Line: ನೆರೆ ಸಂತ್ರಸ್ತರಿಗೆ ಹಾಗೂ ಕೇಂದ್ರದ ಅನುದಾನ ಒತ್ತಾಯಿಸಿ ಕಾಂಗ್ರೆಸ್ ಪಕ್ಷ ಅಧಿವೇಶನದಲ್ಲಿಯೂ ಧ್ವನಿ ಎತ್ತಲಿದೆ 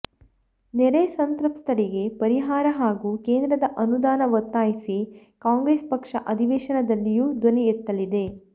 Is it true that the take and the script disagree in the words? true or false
true